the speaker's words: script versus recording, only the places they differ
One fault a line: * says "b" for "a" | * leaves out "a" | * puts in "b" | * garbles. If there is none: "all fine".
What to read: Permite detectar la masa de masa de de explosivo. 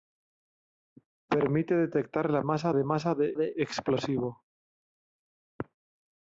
all fine